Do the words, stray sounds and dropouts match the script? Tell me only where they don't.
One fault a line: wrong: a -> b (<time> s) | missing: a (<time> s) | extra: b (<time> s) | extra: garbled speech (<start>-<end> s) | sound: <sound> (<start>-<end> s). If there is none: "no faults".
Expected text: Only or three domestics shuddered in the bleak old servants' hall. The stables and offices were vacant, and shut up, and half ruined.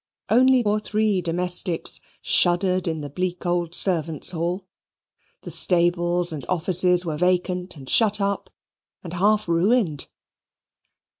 no faults